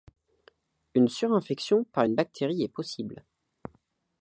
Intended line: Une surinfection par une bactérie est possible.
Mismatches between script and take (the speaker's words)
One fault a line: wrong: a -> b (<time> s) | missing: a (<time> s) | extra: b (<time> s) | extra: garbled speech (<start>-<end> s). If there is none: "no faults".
no faults